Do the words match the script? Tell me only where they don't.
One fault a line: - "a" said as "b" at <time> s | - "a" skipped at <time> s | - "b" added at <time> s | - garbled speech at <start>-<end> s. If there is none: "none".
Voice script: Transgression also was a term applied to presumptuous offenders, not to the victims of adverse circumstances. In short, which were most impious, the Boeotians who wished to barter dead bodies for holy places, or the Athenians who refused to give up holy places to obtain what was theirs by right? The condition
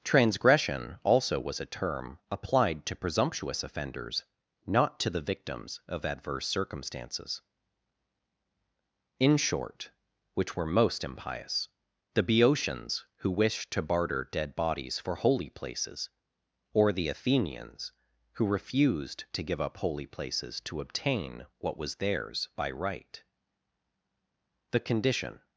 none